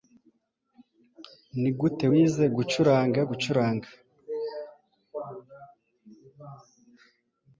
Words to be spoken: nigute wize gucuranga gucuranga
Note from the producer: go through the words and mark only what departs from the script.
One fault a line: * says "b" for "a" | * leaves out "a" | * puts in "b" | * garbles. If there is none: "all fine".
all fine